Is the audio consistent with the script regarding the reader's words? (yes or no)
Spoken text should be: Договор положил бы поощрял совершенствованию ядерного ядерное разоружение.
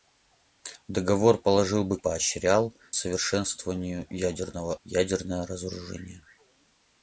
yes